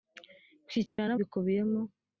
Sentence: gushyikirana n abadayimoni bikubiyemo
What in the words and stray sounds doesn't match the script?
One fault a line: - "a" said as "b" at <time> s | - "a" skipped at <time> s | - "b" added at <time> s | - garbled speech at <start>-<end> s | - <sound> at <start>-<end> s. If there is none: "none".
- dropout at 0.9-1.0 s
- "abadayimoni" skipped at 1.1 s